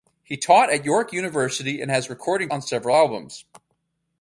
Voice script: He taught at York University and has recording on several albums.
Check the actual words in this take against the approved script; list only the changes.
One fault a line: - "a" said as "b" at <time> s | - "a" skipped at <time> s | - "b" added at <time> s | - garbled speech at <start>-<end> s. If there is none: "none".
none